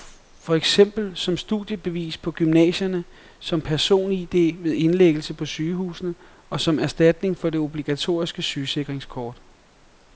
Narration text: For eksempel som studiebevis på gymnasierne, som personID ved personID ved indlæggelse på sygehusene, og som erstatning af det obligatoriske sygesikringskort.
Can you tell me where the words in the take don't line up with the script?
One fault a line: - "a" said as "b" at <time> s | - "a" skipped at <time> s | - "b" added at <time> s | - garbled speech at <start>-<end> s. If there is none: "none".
- "personID ved" skipped at 4.7 s
- "af" said as "for" at 7.4 s